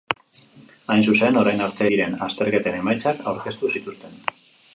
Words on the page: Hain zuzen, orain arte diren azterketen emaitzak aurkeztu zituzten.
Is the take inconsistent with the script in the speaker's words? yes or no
no